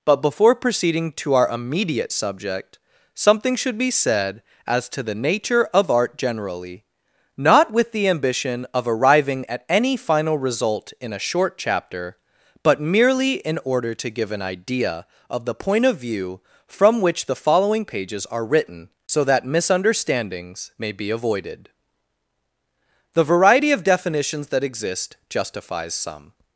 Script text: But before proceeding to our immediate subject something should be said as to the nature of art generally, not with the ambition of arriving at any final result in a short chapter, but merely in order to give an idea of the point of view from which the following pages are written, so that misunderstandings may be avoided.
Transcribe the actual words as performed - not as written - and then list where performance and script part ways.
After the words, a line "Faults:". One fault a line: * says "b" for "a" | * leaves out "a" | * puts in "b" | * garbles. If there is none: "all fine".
But before proceeding to our immediate subject something should be said as to the nature of art generally, not with the ambition of arriving at any final result in a short chapter, but merely in order to give an idea of the point of view from which the following pages are written, so that misunderstandings may be avoided. The variety of definitions that exist justifies some
Faults:
* puts in "The variety of definitions that exist justifies some"